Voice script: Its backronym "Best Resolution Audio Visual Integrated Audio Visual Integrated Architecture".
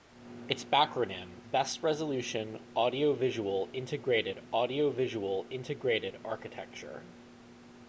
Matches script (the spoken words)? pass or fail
pass